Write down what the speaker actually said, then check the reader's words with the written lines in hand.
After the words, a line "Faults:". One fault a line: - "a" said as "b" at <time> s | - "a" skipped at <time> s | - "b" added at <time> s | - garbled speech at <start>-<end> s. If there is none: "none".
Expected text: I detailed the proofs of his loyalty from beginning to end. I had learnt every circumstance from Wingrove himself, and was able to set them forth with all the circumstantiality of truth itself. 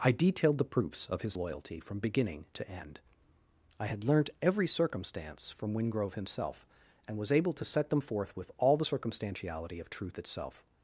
I detailed the proofs of his loyalty from beginning to end. I had learnt every circumstance from Wingrove himself, and was able to set them forth with all the circumstantiality of truth itself.
Faults:
none